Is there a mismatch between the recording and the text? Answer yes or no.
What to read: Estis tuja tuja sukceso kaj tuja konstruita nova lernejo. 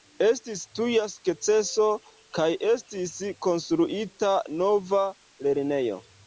yes